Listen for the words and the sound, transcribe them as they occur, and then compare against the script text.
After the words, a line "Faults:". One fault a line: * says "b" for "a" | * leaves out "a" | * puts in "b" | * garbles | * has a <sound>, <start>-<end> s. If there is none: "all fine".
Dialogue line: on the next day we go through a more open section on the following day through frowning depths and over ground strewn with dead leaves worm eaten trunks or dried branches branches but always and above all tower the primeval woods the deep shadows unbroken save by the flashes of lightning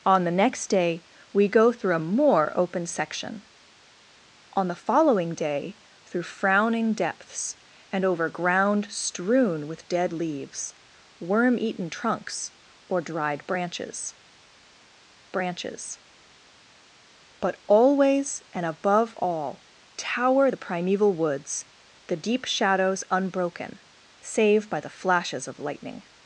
on the next day we go through a more open section on the following day through frowning depths and over ground strewn with dead leaves worm eaten trunks or dried branches branches but always and above all tower the primeval woods the deep shadows unbroken save by the flashes of lightning
Faults:
all fine